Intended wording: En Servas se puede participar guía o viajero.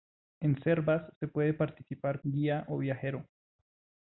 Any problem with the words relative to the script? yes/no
no